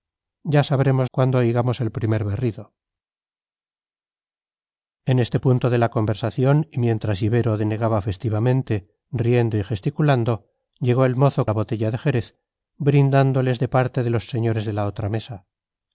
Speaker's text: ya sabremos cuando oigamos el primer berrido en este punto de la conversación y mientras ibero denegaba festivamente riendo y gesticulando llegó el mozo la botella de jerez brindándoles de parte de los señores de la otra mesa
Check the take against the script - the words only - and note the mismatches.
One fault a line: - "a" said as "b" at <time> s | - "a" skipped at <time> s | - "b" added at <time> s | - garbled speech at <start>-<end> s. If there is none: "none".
none